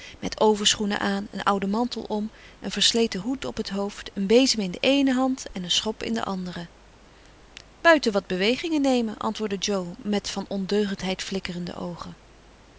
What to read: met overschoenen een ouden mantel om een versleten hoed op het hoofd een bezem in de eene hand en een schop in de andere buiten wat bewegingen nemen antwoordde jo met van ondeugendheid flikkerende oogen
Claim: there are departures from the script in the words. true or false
true